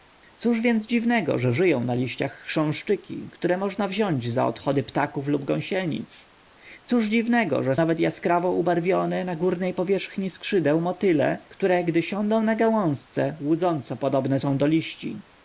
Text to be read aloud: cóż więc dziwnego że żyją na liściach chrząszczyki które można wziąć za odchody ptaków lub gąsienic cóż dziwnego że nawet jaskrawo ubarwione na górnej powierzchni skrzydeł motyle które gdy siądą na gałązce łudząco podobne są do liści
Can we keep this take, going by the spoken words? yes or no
yes